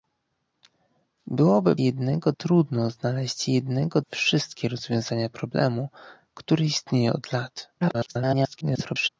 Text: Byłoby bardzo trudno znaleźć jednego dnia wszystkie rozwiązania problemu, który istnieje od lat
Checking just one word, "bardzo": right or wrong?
wrong